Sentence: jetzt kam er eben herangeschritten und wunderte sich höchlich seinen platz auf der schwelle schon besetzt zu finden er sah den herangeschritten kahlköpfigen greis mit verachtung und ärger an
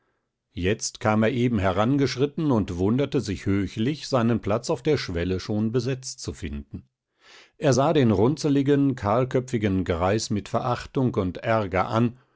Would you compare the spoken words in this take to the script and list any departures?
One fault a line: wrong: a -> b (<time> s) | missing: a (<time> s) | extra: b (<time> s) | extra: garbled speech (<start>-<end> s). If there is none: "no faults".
wrong: herangeschritten -> runzeligen (8.1 s)